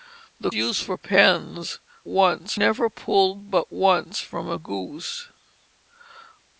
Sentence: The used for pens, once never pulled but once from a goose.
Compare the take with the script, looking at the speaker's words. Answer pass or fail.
pass